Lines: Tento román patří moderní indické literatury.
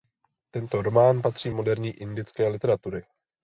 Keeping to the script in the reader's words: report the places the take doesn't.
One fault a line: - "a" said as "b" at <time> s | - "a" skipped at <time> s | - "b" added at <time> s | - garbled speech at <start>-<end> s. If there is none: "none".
none